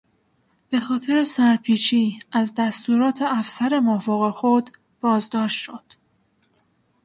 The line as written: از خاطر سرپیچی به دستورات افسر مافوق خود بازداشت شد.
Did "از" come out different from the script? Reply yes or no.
yes